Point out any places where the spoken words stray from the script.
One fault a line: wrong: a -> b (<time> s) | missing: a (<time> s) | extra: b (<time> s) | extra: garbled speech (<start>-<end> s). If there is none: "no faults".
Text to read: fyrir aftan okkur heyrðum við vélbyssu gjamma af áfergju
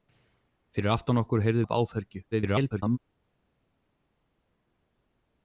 missing: við vélbyssu gjamma (1.7 s)
extra: garbled speech (2.3-3.0 s)